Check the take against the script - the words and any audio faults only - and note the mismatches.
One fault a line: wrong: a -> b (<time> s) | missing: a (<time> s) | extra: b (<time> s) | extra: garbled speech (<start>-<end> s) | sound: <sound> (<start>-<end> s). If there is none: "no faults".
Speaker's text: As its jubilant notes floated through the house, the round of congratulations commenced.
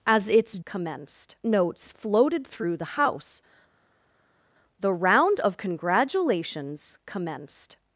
wrong: jubilant -> commenced (0.6 s)